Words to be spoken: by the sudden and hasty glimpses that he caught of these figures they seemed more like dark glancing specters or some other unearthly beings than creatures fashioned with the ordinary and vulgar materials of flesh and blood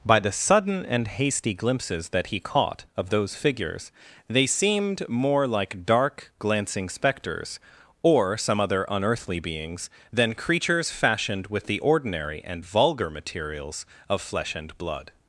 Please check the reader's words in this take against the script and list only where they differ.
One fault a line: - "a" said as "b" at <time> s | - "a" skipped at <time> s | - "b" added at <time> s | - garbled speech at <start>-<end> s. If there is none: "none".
- "these" said as "those" at 3.1 s